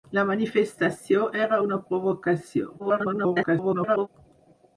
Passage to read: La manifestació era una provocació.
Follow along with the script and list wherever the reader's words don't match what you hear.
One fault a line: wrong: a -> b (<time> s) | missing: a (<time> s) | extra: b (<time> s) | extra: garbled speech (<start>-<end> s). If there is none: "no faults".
extra: garbled speech (2.8-4.1 s)